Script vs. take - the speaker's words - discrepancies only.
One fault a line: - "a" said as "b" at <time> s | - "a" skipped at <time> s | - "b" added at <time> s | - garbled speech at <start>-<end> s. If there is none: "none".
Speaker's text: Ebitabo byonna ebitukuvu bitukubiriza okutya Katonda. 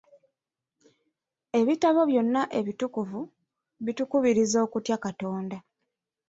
none